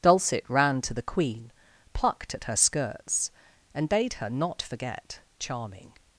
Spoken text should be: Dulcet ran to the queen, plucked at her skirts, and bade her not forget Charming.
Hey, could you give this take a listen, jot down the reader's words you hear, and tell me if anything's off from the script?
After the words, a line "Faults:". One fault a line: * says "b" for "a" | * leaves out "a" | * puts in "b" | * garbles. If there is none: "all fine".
Dulcet ran to the queen, plucked at her skirts, and bade her not forget Charming.
Faults:
all fine